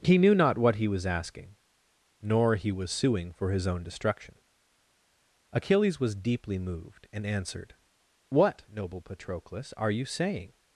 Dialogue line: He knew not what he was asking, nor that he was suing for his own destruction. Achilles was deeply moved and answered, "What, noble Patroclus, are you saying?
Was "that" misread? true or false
true